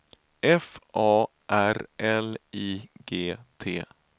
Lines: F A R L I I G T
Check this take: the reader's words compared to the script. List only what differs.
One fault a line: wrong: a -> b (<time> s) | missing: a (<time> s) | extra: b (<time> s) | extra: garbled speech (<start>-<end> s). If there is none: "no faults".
missing: I (2.9 s)